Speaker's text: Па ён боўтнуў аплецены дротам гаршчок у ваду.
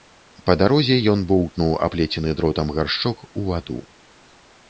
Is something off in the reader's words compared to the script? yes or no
yes